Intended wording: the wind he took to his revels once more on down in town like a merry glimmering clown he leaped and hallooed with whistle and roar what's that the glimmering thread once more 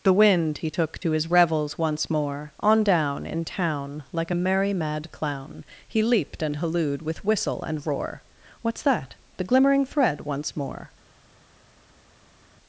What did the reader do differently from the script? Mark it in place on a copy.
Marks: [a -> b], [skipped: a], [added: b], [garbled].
the wind he took to his revels once more on down in town like a merry [glimmering -> mad] clown he leaped and hallooed with whistle and roar what's that the glimmering thread once more